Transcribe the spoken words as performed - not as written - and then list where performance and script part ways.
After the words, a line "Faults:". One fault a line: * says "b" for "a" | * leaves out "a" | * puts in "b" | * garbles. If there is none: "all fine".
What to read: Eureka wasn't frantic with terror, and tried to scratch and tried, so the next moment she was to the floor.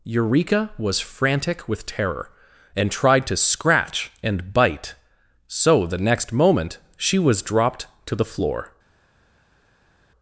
Eureka was frantic with terror, and tried to scratch and bite, so the next moment she was dropped to the floor.
Faults:
* says "was" for "wasn't"
* says "bite" for "tried"
* puts in "dropped"